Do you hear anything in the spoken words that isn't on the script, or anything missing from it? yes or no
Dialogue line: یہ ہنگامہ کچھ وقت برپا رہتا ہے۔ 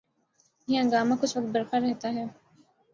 no